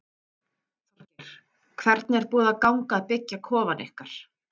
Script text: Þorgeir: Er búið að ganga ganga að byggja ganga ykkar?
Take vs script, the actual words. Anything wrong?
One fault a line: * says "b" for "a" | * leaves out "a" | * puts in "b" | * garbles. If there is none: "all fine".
* puts in "Hvernig"
* leaves out "ganga"
* says "kofann" for "ganga"